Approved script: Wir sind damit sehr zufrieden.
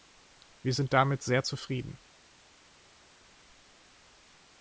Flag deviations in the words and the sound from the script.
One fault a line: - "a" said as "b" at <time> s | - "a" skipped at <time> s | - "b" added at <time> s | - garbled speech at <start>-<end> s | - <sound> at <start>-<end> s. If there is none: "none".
none